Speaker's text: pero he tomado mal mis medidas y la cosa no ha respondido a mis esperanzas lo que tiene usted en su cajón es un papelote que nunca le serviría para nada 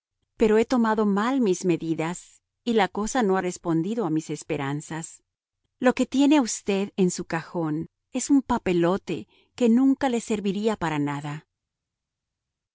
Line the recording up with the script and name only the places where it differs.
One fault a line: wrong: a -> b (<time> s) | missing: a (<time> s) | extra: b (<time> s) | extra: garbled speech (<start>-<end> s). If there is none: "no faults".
no faults